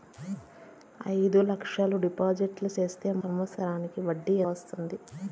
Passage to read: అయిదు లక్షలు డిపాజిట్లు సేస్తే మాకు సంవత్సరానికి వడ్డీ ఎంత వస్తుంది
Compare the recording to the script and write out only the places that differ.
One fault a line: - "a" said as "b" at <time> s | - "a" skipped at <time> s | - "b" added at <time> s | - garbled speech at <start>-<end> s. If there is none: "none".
- "మాకు" skipped at 3.1 s
- "ఎంత" skipped at 4.4 s